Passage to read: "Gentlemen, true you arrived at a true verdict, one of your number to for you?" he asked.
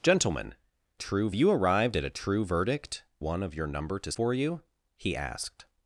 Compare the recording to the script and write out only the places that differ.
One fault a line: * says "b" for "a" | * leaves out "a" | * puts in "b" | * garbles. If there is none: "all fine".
all fine